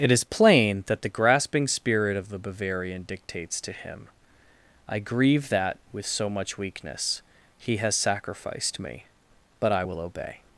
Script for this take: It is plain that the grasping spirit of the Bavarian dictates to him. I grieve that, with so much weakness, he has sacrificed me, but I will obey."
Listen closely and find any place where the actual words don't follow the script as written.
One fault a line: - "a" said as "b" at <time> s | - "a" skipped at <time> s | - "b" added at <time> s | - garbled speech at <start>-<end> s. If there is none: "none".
none